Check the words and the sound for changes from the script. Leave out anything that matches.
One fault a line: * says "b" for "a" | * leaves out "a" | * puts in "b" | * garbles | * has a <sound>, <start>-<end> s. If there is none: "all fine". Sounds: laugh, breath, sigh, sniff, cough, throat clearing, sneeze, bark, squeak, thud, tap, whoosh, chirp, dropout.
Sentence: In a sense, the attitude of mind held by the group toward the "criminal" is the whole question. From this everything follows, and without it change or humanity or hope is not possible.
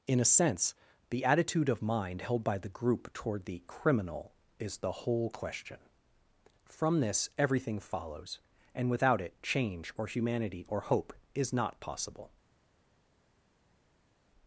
all fine